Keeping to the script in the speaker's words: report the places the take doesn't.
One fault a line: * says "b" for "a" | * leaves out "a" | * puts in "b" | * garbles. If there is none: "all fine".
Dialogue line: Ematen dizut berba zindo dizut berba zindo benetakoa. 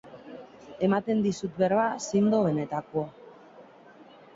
* leaves out "dizut berba zindo"